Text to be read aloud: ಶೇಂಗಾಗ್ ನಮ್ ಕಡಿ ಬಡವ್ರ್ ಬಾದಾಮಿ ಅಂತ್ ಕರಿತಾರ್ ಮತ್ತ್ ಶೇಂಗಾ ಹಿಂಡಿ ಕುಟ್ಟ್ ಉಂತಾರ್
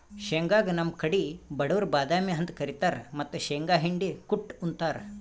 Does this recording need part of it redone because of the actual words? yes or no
no